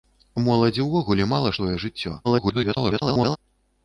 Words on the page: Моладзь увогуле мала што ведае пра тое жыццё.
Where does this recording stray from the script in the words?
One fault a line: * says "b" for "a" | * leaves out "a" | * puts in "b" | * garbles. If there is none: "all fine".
* leaves out "што ведае пра"
* garbles